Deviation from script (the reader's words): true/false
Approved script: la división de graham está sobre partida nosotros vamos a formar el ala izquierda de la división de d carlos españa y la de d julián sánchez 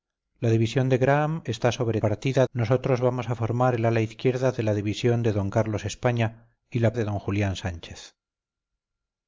false